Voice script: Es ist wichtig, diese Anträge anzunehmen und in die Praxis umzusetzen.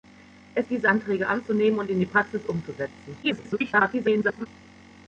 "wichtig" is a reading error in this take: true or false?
true